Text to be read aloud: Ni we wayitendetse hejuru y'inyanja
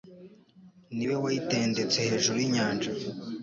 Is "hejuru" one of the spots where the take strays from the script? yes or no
no